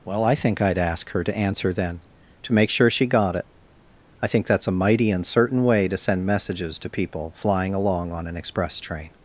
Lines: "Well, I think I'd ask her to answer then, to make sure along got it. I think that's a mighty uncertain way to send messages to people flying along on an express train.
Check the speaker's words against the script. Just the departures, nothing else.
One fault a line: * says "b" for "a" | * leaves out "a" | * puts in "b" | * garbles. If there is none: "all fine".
* says "she" for "along"